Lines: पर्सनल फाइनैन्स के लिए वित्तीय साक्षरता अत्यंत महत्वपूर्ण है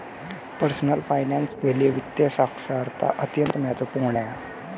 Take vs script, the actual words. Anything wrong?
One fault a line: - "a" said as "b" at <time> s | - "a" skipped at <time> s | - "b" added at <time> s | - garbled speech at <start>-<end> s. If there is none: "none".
none